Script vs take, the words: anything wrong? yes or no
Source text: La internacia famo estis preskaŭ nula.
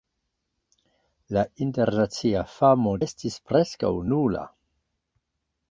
no